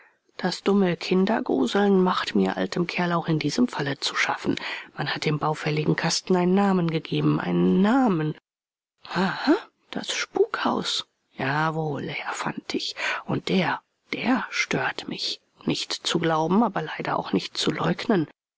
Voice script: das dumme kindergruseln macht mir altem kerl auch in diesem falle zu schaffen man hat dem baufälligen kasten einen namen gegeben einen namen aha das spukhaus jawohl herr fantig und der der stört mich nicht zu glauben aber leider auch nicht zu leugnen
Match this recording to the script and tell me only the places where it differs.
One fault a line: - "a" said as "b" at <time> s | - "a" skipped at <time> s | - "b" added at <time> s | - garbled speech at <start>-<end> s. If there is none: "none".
none